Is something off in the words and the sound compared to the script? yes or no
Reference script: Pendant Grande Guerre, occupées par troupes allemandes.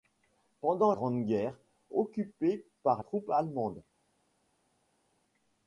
no